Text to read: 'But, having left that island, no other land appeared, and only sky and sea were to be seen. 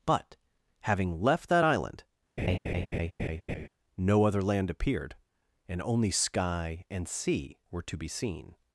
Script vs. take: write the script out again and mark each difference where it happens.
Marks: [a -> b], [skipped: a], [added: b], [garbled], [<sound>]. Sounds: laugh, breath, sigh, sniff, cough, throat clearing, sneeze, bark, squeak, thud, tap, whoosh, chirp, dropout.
'But, having left that island, [laugh] no other land appeared, and only sky and sea were to be seen.